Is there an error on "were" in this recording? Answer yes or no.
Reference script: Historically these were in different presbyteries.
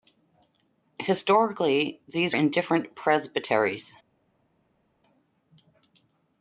yes